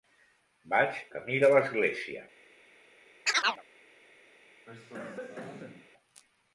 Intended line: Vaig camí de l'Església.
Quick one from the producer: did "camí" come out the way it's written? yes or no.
yes